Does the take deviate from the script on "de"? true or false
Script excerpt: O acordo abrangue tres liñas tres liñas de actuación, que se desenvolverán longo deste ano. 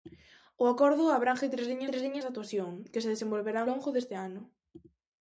false